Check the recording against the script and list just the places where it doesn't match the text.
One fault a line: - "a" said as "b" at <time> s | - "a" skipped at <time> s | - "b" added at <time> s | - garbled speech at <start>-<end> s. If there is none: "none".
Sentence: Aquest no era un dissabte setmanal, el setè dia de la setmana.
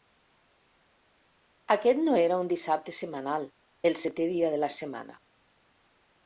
none